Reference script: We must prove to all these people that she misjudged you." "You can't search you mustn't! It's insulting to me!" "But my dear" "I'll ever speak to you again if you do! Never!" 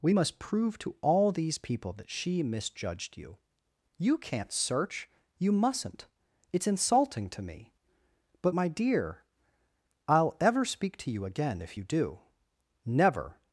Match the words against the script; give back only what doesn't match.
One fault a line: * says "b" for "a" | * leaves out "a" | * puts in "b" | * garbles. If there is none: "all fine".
all fine